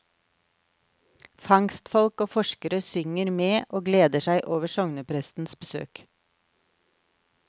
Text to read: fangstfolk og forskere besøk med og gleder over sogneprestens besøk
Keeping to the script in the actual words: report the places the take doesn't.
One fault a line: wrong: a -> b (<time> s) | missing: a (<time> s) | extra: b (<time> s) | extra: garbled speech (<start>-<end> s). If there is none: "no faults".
wrong: besøk -> synger (2.9 s)
extra: seg (4.3 s)